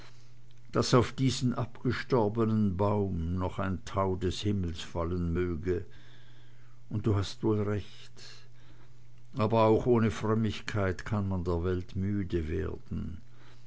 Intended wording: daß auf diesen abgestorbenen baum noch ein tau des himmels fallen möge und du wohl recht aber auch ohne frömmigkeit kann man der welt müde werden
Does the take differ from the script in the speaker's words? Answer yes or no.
yes